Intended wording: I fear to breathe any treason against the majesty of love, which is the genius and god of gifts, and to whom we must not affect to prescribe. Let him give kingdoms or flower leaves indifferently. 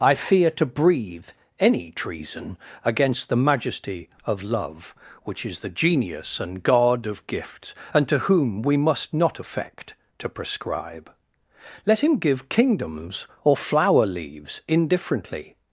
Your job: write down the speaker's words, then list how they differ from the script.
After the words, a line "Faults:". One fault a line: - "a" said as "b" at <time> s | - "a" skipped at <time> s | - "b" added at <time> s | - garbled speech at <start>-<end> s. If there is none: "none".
I fear to breathe any treason against the majesty of love, which is the genius and god of gifts, and to whom we must not affect to prescribe. Let him give kingdoms or flower leaves indifferently.
Faults:
none